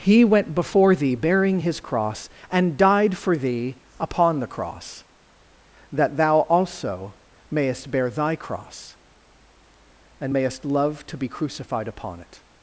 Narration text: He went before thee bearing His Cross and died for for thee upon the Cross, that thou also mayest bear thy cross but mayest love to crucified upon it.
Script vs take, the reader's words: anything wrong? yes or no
yes